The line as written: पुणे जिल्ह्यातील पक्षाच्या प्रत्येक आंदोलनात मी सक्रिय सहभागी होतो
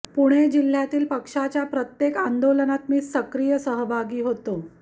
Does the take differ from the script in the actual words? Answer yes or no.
no